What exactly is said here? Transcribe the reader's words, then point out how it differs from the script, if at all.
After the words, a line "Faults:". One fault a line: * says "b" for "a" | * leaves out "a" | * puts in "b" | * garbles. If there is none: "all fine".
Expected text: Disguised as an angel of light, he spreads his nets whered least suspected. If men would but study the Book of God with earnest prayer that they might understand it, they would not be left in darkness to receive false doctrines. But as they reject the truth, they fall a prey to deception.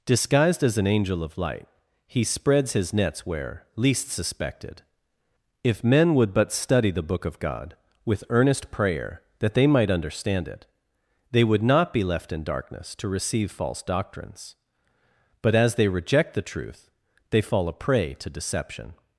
Disguised as an angel of light, he spreads his nets where least suspected. If men would but study the Book of God with earnest prayer that they might understand it, they would not be left in darkness to receive false doctrines. But as they reject the truth, they fall a prey to deception.
Faults:
* says "where" for "whered"